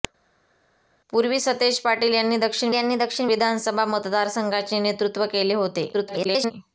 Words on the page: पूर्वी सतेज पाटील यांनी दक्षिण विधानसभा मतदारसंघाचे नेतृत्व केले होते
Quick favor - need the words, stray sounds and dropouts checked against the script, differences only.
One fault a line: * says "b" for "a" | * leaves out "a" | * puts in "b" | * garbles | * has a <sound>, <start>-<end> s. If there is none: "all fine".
* puts in "यांनी दक्षिण"
* garbles